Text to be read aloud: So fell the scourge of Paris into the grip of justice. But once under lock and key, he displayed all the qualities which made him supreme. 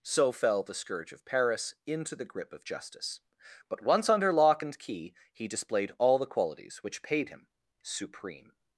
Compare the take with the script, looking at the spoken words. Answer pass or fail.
fail